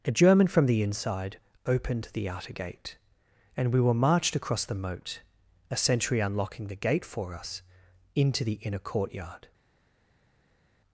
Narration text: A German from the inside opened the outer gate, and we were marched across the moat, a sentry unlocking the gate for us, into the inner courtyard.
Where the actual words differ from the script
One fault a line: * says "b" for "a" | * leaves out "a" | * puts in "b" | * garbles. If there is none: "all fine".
all fine